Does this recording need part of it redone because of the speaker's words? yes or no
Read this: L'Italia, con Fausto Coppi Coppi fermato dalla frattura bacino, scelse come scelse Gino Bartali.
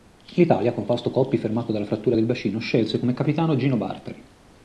yes